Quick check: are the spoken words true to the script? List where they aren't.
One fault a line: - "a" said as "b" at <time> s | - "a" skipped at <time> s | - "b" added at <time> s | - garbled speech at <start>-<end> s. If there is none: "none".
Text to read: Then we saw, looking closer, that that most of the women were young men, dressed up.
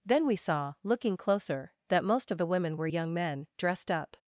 - "that" skipped at 2.0 s